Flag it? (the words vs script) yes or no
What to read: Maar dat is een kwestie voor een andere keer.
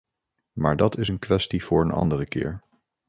no